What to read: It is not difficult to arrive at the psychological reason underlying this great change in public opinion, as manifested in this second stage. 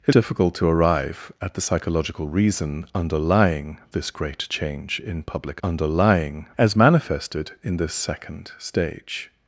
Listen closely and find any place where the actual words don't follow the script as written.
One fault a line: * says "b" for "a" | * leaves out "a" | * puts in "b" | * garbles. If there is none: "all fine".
* leaves out "is not"
* says "underlying" for "opinion"